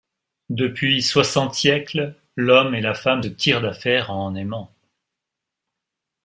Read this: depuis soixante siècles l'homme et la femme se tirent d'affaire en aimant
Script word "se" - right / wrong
wrong